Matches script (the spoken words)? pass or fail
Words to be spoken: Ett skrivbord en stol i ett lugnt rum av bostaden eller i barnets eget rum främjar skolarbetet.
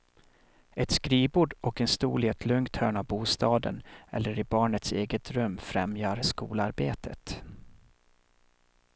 fail